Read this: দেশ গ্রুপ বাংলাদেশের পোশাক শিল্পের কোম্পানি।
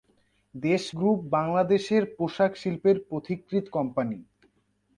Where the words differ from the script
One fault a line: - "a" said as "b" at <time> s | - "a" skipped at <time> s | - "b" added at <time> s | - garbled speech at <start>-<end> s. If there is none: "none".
- "পথিকৃৎ" added at 3.1 s